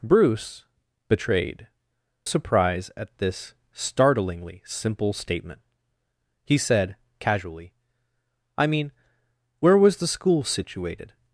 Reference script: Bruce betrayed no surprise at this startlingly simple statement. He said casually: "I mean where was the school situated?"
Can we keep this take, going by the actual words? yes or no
no